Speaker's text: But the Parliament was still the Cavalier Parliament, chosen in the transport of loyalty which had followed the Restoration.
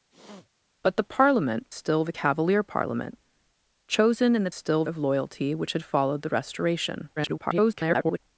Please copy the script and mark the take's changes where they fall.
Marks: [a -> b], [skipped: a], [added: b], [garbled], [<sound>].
[sniff] But the Parliament [skipped: was] still the Cavalier Parliament, chosen in the [transport -> still] of loyalty which had followed the Restoration. [garbled]